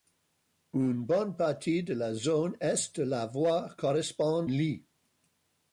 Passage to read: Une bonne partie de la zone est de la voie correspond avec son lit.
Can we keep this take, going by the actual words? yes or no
no